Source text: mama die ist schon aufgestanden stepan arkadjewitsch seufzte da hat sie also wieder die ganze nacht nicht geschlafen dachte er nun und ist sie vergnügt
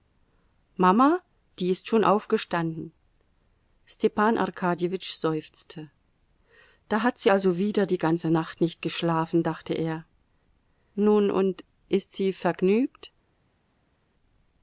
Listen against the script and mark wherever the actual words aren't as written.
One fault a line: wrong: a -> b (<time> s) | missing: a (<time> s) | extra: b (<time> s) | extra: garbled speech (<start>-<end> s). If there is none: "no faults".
no faults